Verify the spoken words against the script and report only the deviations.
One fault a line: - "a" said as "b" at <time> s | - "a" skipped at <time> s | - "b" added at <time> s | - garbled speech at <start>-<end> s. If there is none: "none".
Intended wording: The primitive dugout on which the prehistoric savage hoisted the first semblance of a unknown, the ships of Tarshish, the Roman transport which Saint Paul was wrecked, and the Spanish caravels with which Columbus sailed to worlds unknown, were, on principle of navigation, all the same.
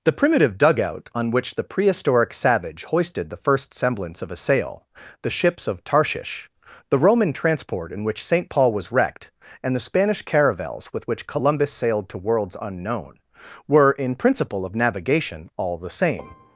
- "unknown" said as "sail" at 4.3 s
- "in" added at 7.9 s
- "on" said as "in" at 13.9 s